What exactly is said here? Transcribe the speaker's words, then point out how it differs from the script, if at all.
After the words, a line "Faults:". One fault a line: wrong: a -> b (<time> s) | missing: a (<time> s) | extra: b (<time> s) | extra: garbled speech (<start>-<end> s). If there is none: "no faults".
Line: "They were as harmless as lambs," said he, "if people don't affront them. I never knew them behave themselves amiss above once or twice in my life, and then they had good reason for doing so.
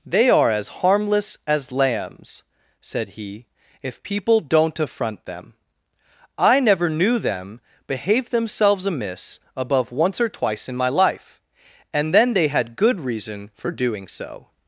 "They are as harmless as lambs," said he, "if people don't affront them. I never knew them behave themselves amiss above once or twice in my life, and then they had good reason for doing so.
Faults:
wrong: were -> are (0.3 s)